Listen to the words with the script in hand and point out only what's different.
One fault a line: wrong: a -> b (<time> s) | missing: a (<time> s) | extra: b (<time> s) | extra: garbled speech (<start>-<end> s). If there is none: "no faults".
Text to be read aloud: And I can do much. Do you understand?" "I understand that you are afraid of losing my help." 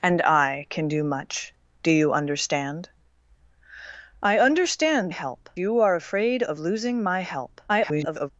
wrong: that -> help (5.1 s)
extra: garbled speech (7.7-8.3 s)